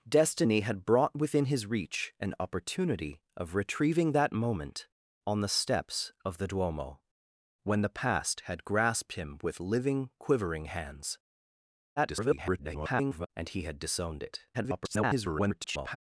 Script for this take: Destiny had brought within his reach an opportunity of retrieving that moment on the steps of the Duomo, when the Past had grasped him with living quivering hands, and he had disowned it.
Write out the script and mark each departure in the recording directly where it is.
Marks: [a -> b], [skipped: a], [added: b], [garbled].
Destiny had brought within his reach an opportunity of retrieving that moment on the steps of the Duomo, when the Past had grasped him with living quivering hands, [garbled] and he had disowned it. [garbled]